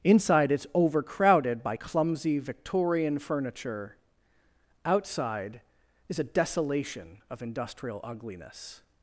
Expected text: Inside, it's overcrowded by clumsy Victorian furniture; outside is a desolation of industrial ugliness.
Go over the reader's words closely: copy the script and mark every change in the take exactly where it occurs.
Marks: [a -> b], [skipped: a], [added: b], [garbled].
Inside, it's overcrowded by clumsy Victorian furniture; outside is a desolation of industrial ugliness.